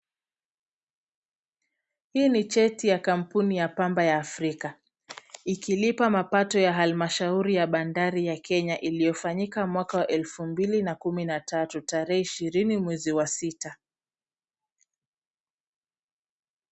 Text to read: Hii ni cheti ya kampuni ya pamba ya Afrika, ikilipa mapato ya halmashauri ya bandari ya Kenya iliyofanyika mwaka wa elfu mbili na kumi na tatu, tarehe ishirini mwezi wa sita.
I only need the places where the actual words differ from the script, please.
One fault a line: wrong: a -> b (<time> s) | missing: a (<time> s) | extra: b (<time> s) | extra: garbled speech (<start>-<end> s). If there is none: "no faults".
no faults